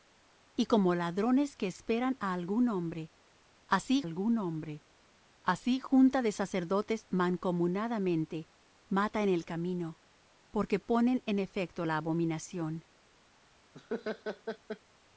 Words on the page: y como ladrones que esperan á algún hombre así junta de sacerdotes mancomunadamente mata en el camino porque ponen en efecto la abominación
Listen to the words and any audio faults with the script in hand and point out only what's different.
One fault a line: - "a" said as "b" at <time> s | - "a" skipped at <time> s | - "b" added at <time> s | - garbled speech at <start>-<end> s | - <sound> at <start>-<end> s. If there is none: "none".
- "algún hombre así" added at 4.0 s
- laugh at 13.7-14.8 s